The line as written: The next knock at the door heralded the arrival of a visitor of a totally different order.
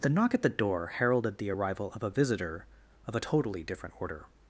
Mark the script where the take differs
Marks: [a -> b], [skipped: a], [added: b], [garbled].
The [skipped: next] knock at the door heralded the arrival of a visitor of a totally different order.